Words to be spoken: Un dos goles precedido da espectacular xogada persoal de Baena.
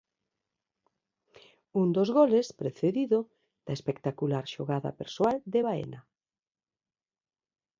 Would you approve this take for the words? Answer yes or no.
yes